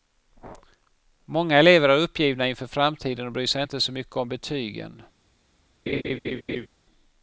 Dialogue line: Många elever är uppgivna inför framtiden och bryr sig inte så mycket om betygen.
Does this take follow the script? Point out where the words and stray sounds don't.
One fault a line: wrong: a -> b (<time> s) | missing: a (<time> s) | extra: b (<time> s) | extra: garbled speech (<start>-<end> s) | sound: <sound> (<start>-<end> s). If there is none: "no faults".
sound: laugh (5.9-6.7 s)